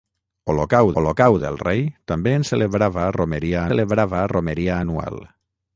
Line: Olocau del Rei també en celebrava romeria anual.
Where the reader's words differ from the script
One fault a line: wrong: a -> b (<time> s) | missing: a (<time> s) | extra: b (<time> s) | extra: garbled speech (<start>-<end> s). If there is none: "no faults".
extra: olocau (1.0 s)
extra: celebrava romeria (3.7 s)